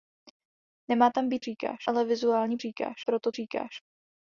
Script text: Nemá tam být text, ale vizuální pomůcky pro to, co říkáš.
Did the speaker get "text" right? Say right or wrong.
wrong